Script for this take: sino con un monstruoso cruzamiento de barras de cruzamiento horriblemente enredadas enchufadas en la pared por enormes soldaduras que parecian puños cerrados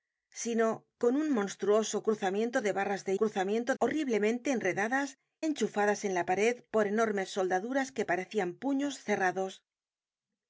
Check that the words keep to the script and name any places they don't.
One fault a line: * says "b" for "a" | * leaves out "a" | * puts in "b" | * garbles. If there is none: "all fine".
all fine